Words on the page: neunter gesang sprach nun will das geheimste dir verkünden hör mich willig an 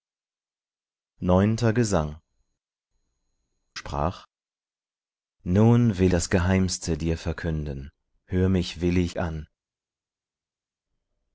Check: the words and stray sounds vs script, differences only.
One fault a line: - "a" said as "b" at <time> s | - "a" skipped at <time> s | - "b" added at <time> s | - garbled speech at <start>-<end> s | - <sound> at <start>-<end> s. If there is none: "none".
none